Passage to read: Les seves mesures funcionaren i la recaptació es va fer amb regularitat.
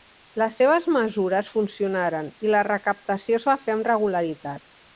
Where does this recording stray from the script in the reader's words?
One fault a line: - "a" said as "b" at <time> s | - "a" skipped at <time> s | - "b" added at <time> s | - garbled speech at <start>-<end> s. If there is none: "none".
none